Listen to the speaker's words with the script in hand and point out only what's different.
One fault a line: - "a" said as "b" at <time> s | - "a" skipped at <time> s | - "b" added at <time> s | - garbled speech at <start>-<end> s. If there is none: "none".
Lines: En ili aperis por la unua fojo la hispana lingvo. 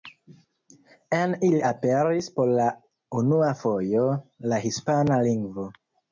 none